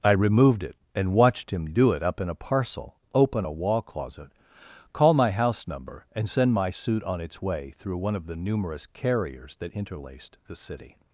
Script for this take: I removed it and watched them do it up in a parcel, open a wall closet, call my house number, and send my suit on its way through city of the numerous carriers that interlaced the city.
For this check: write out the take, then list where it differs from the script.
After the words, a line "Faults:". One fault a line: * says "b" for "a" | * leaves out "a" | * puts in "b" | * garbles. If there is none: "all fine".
I removed it and watched him do it up in a parcel, open a wall closet, call my house number, and send my suit on its way through one of the numerous carriers that interlaced the city.
Faults:
* says "him" for "them"
* says "one" for "city"